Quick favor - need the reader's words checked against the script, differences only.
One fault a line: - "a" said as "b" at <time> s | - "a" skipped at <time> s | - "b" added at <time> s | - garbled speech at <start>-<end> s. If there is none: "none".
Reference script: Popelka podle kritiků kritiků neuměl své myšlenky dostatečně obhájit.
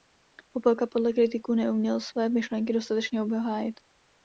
- "kritiků" skipped at 1.5 s